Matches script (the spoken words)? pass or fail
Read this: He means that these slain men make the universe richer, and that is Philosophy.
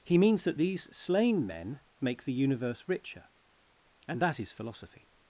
pass